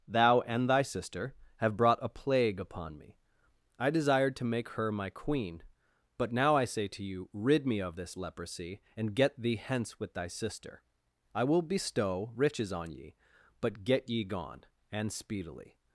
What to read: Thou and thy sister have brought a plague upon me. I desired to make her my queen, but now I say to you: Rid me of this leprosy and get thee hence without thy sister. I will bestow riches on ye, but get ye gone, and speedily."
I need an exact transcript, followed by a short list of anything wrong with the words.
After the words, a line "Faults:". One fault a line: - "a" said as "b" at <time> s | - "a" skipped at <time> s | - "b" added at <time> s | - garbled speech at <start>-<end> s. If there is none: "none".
Thou and thy sister have brought a plague upon me. I desired to make her my queen, but now I say to you: Rid me of this leprosy and get thee hence with thy sister. I will bestow riches on ye, but get ye gone, and speedily."
Faults:
- "without" said as "with" at 10.0 s